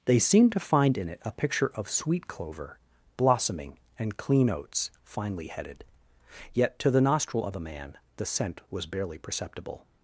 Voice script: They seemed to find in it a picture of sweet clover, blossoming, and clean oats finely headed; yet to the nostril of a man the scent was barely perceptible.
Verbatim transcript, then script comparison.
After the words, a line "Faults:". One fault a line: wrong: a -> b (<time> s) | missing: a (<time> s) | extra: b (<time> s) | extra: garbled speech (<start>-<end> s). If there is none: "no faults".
They seemed to find in it a picture of sweet clover, blossoming, and clean oats finely headed; yet to the nostril of a man the scent was barely perceptible.
Faults:
no faults